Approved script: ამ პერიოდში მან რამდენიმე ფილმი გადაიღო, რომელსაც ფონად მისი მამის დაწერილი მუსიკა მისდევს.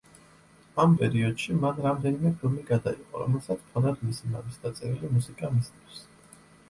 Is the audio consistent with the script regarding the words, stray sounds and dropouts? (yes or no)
yes